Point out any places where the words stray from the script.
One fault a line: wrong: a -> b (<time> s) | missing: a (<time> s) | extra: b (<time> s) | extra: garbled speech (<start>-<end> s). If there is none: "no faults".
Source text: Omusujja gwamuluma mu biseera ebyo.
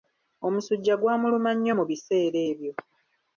extra: nnyo (1.6 s)